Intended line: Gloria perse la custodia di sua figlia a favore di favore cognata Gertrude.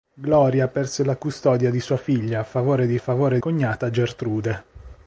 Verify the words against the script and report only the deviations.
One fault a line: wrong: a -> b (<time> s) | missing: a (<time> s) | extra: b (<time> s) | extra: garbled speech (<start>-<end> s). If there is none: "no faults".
no faults